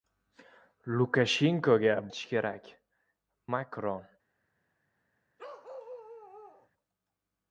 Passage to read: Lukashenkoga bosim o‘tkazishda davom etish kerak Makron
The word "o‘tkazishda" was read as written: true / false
false